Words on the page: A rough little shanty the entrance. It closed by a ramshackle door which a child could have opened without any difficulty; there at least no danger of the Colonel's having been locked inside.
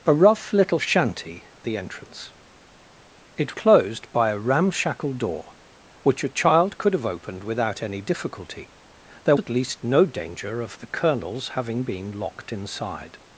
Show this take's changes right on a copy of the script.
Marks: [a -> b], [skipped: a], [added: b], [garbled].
A rough little shanty the entrance. It closed by a ramshackle door which a child could have opened without any difficulty; there at least no danger of the Colonel's having been locked inside.